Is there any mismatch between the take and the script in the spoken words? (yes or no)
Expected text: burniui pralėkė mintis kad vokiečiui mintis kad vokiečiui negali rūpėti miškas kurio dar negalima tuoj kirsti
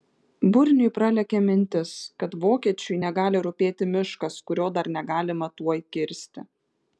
yes